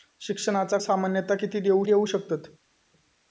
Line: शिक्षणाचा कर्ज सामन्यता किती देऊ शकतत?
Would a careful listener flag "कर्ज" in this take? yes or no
yes